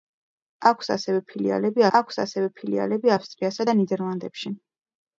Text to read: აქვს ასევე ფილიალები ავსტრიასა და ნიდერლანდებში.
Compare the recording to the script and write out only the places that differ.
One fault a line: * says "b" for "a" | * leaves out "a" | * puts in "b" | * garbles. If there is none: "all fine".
* puts in "აქვს ასევე ფილიალები"